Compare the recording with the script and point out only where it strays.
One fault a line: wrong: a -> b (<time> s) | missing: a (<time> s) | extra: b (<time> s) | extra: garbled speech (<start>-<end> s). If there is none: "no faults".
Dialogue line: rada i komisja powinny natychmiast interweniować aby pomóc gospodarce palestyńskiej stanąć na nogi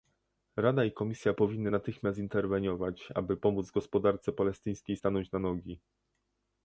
no faults